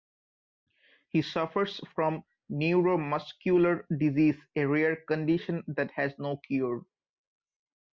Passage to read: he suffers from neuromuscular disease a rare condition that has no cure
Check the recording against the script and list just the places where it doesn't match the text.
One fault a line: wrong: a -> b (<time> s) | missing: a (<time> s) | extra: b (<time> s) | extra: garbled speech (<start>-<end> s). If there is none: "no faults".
no faults